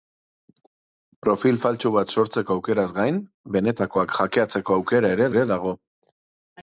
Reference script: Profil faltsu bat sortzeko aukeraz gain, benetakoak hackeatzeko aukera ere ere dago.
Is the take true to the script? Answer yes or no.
yes